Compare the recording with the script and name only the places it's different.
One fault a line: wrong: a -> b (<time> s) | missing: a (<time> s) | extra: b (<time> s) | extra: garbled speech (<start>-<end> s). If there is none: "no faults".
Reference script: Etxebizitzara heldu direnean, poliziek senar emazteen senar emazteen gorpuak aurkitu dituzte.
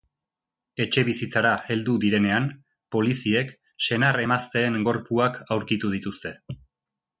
missing: senar emazteen (4.8 s)